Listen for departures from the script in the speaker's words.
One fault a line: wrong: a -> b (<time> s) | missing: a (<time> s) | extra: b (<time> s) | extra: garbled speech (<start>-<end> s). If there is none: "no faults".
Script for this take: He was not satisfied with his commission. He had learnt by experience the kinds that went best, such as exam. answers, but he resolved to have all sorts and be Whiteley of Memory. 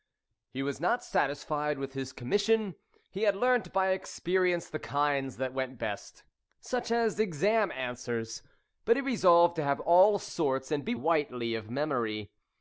no faults